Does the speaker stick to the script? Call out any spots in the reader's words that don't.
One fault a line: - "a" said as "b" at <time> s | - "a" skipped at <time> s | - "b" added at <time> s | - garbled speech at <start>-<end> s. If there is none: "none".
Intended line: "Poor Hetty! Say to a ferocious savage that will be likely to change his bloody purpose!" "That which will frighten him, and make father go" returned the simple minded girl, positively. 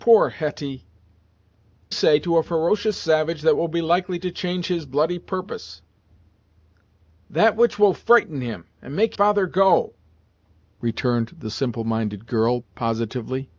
none